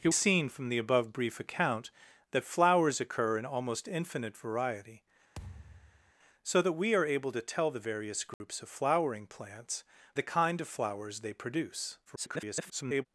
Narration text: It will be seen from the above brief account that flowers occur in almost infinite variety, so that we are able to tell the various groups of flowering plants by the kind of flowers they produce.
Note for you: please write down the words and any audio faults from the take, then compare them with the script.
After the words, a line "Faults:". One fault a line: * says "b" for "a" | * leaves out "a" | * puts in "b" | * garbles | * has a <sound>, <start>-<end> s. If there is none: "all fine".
It seen from the above brief account that flowers occur in almost infinite variety, so that we are able to tell the various groups of flowering plants the kind of flowers they produce. [garbled]
Faults:
* leaves out "will be"
* has a thud, 5.4-6.1 s
* has a dropout, 8.3-8.4 s
* leaves out "by"
* garbles